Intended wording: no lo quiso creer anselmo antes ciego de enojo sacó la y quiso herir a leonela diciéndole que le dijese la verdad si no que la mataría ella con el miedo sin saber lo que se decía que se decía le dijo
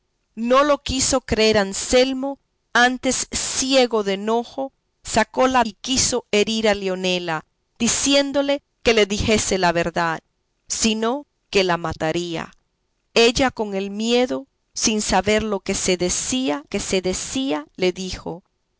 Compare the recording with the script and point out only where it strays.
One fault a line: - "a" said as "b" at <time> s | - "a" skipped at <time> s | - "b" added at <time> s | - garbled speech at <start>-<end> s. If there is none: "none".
none